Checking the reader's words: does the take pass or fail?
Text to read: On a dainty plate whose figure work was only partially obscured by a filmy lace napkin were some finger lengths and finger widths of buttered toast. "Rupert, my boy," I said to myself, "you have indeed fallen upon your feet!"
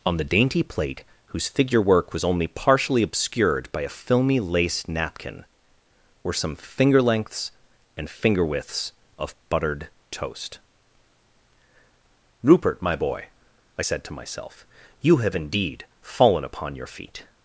fail